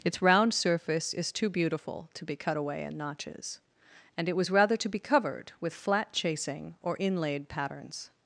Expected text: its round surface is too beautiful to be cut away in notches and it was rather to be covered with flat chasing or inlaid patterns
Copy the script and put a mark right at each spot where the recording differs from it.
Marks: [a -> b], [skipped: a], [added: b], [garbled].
its round surface is too beautiful to be cut away in notches and it was rather to be covered with flat chasing or inlaid patterns